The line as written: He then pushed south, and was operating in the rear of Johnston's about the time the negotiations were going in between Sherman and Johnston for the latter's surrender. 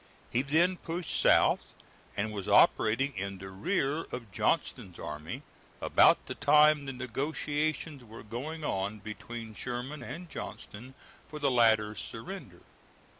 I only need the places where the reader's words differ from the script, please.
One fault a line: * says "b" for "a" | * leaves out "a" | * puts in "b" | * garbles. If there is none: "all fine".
* puts in "army"
* says "on" for "in"